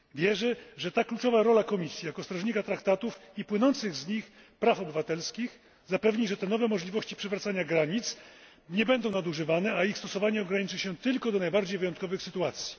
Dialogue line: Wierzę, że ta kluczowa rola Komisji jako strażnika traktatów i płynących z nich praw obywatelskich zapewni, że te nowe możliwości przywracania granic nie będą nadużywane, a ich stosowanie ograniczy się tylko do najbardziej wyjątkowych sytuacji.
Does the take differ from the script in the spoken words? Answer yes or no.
no